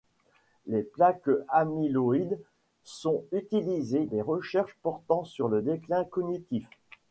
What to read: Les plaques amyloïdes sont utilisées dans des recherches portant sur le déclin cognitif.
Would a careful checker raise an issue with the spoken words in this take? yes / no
yes